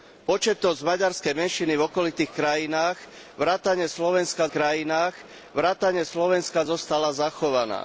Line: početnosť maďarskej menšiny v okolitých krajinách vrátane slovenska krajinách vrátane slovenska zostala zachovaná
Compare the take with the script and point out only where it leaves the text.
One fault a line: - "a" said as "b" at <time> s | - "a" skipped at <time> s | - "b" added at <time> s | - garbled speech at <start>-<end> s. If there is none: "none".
none